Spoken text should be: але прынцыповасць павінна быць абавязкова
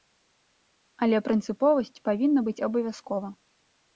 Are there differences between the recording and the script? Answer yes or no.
no